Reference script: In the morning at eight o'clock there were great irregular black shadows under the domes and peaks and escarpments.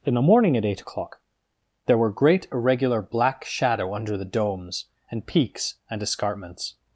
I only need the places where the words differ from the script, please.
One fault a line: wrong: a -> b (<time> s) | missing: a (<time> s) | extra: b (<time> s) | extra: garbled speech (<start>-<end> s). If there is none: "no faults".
wrong: shadows -> shadow (3.5 s)